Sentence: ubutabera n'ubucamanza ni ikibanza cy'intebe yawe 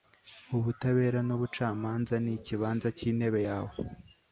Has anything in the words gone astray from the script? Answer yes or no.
no